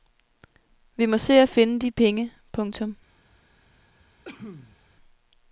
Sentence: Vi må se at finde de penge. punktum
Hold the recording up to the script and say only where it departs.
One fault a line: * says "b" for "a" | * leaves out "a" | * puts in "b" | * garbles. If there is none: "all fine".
all fine